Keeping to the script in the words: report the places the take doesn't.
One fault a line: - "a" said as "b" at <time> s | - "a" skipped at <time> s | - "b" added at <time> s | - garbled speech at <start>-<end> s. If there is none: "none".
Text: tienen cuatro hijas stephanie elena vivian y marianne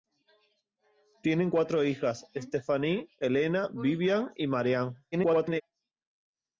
- garbled speech at 5.1-5.6 s